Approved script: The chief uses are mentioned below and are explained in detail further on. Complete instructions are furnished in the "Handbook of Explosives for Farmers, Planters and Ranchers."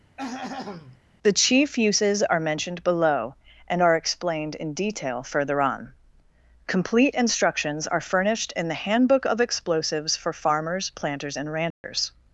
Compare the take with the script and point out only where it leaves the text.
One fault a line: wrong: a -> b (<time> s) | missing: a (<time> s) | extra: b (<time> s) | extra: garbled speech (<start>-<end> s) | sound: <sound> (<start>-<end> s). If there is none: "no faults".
sound: throat clearing (0.2-1.0 s)
sound: dropout (11.7-11.8 s)